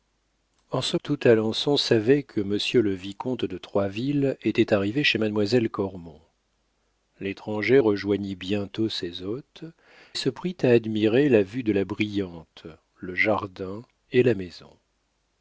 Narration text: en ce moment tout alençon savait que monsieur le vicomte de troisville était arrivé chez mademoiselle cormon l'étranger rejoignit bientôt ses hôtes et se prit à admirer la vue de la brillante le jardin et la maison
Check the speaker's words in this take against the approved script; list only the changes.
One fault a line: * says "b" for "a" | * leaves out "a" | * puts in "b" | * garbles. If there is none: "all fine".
* leaves out "moment"
* leaves out "et"